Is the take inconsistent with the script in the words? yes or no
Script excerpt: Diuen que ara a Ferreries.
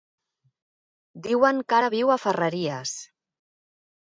yes